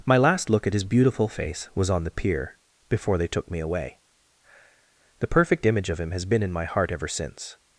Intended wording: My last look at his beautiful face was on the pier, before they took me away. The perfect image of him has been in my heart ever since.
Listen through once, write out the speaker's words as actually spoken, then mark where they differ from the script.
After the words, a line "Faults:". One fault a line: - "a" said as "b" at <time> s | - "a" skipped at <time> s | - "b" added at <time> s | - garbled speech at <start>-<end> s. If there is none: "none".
My last look at his beautiful face was on the pier, before they took me away. The perfect image of him has been in my heart ever since.
Faults:
none